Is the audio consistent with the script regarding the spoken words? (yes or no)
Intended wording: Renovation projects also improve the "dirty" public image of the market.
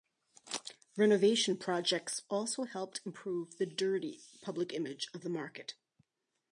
no